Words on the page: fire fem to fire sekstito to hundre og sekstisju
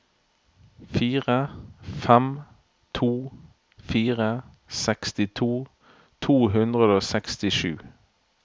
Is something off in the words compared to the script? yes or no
no